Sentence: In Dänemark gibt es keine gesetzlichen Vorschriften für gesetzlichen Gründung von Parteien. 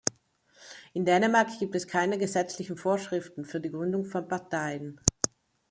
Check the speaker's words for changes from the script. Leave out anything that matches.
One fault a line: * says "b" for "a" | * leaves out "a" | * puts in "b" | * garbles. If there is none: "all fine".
* says "die" for "gesetzlichen"